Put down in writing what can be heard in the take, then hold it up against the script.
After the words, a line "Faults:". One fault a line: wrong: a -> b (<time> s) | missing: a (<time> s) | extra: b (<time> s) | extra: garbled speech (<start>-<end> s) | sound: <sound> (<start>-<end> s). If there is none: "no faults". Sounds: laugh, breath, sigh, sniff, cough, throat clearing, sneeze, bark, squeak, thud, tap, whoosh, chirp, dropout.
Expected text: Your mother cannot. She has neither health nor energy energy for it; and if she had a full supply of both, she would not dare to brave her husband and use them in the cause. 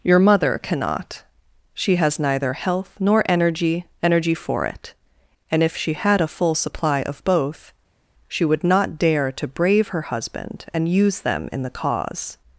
Your mother cannot. She has neither health nor energy energy for it; and if she had a full supply of both, she would not dare to brave her husband and use them in the cause.
Faults:
no faults